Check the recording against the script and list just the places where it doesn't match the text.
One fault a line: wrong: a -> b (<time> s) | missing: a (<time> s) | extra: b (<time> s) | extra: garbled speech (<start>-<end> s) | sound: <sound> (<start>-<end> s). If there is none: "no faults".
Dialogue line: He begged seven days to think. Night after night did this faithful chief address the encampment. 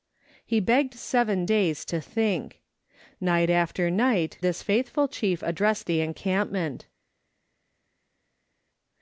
missing: did (4.4 s)